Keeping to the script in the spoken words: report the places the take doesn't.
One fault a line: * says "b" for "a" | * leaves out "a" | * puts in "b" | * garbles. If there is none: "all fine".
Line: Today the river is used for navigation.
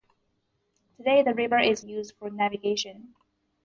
all fine